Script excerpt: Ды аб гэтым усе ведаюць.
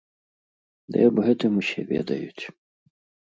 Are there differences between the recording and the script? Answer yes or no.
no